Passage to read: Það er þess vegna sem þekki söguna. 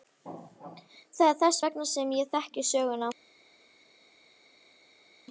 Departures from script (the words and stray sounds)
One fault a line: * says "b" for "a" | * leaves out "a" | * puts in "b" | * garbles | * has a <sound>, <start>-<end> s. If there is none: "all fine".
* puts in "ég"